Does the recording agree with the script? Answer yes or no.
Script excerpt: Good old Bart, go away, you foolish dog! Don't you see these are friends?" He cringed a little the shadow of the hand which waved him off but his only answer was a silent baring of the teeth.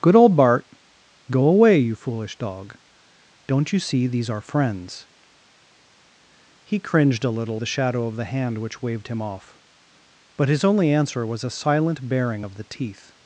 yes